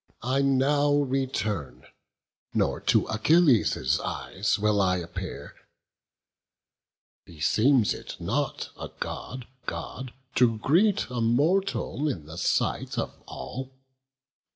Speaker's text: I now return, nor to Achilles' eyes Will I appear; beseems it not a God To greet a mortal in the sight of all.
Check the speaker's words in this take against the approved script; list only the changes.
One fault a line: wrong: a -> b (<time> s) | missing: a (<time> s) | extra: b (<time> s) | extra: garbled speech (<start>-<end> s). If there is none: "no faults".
extra: God (9.7 s)